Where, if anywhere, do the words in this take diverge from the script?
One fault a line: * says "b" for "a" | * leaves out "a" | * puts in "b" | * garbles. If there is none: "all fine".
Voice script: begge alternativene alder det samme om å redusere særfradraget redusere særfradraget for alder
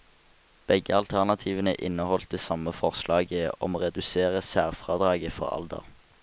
* says "inneholdt" for "alder"
* puts in "forslaget"
* leaves out "redusere særfradraget"